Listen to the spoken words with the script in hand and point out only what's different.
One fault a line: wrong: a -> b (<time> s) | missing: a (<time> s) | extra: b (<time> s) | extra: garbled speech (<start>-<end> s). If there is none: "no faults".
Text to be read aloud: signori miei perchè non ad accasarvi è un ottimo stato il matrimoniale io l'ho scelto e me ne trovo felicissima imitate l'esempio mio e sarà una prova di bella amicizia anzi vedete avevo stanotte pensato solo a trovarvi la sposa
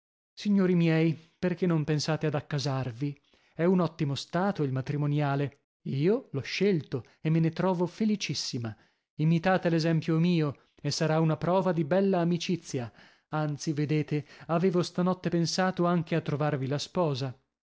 extra: pensate (1.8 s)
wrong: solo -> anche (15.8 s)